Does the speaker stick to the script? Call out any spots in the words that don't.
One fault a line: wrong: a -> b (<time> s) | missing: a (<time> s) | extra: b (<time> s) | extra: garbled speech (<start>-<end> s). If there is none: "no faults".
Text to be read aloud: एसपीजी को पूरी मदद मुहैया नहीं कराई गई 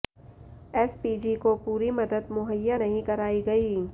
no faults